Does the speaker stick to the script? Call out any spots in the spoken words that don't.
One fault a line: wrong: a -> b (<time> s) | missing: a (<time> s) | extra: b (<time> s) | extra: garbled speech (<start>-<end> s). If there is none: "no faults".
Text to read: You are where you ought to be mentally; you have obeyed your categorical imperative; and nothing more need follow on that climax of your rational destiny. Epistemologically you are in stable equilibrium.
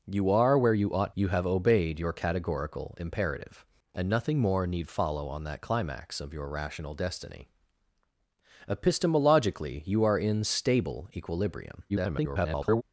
missing: to be mentally (1.1 s)
extra: garbled speech (11.9-12.8 s)